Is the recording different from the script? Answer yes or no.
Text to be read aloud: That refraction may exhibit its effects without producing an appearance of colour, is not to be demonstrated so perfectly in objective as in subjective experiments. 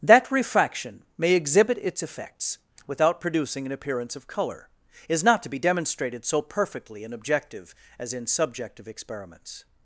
no